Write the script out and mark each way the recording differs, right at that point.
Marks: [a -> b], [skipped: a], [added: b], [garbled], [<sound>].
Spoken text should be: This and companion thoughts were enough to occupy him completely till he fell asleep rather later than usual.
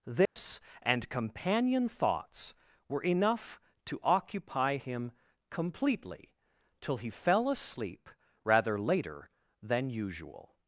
This [dropout] and companion thoughts were enough to occupy him completely till he fell asleep rather later than usual.